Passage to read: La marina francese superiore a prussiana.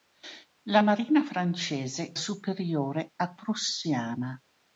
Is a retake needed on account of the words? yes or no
no